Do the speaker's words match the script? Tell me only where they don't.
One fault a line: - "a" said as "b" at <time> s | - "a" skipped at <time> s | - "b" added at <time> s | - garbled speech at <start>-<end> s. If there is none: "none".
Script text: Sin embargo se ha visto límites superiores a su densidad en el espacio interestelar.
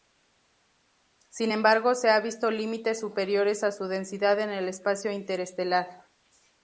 none